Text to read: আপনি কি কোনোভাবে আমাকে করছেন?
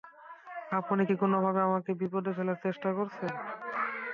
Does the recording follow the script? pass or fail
fail